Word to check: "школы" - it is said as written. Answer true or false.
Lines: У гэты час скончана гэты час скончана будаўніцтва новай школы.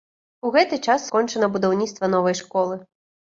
true